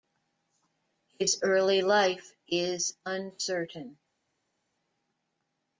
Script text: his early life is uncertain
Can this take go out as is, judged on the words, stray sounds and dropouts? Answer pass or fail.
pass